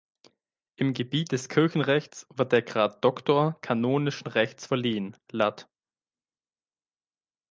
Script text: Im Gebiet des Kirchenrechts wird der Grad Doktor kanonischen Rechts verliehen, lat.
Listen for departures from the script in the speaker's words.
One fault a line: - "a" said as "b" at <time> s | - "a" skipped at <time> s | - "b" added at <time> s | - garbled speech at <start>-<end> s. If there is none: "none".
none